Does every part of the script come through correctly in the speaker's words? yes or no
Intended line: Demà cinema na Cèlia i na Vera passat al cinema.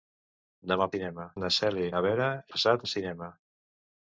yes